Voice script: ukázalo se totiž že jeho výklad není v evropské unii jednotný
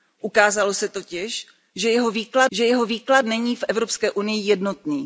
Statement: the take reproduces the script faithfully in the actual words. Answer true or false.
false